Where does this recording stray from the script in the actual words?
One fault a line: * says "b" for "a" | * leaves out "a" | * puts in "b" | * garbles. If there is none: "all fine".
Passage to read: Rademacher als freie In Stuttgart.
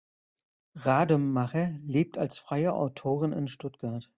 * puts in "lebt"
* puts in "Autorin"